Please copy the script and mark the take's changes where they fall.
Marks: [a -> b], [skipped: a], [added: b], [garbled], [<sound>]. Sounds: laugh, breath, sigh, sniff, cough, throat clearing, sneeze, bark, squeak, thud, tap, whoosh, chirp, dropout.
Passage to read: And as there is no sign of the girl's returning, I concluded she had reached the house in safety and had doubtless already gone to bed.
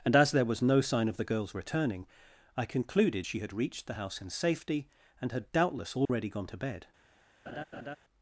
And as there [is -> was] no sign of the girl's returning, I concluded she had reached the house in safety and had doubtless already [dropout] gone to bed. [laugh]